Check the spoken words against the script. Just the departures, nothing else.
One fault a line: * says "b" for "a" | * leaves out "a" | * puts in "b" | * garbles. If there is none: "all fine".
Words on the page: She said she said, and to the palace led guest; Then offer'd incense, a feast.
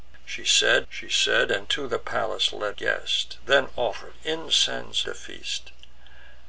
all fine